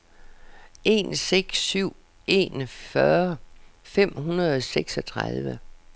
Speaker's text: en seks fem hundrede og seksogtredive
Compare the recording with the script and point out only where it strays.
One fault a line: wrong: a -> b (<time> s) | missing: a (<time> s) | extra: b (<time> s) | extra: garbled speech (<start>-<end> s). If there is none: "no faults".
extra: syv en fyrre (1.6 s)